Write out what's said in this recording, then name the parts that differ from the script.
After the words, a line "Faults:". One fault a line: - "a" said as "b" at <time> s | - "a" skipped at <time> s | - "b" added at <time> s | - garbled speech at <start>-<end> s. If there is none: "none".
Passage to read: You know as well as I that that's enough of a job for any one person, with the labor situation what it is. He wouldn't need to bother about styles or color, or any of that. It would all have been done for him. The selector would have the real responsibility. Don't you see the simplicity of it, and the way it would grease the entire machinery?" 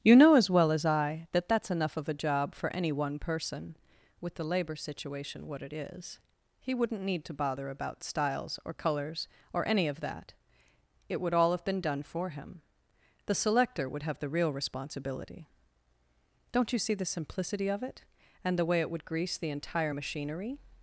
You know as well as I that that's enough of a job for any one person, with the labor situation what it is. He wouldn't need to bother about styles or colors, or any of that. It would all have been done for him. The selector would have the real responsibility. Don't you see the simplicity of it, and the way it would grease the entire machinery?"
Faults:
- "color" said as "colors" at 8.7 s